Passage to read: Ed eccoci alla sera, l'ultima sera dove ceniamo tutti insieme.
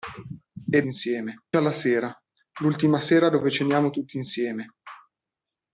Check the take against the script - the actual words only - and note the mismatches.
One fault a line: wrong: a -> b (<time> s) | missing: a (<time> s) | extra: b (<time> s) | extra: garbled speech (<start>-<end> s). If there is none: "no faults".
wrong: eccoci -> insieme (0.9 s)